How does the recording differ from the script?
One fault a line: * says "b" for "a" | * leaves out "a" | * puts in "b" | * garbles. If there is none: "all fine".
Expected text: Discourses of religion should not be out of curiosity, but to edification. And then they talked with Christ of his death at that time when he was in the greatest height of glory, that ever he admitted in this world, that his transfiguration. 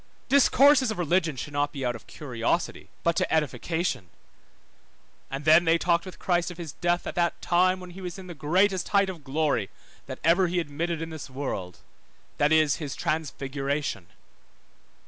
* puts in "is"